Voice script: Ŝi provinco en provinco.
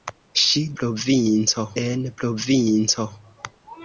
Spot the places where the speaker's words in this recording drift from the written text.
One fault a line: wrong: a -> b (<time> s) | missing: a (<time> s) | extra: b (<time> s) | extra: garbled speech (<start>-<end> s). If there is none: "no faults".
no faults